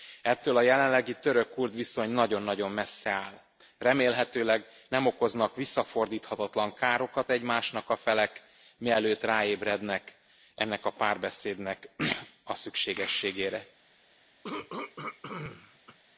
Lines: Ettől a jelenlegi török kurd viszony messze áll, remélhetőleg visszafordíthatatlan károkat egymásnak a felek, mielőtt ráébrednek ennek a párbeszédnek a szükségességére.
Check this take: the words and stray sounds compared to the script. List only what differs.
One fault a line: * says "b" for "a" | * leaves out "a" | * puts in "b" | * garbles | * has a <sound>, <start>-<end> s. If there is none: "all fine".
* puts in "nagyon nagyon"
* puts in "nem okoznak"
* has a throat clearing, 14.4-16.0 s